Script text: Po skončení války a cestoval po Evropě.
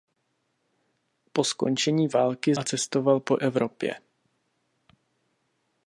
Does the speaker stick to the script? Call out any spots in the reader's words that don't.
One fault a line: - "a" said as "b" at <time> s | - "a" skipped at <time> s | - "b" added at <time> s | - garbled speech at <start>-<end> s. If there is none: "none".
none